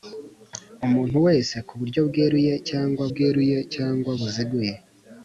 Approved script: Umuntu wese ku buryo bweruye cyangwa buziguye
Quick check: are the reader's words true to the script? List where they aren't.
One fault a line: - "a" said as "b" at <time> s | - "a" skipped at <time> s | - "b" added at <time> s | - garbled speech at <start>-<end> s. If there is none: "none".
- "bweruye cyangwa" added at 3.1 s